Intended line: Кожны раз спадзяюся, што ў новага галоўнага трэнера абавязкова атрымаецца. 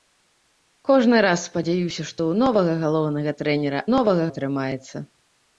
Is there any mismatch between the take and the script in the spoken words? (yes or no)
yes